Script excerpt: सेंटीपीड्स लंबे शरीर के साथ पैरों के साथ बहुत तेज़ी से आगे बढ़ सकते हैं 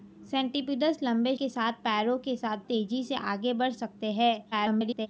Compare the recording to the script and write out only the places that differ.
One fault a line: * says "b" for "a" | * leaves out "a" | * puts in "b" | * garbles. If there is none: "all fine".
* leaves out "शरीर"
* leaves out "बहुत"
* garbles